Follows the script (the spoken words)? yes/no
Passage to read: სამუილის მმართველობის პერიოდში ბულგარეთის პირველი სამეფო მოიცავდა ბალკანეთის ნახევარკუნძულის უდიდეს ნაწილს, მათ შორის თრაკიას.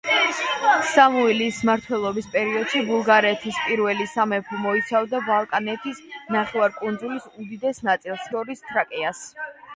no